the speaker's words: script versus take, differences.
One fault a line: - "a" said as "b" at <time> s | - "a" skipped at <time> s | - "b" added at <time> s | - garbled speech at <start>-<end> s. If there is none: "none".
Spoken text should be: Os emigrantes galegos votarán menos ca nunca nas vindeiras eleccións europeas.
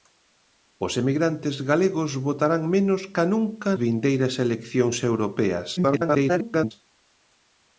- "nas" skipped at 3.7 s
- garbled speech at 5.8-6.7 s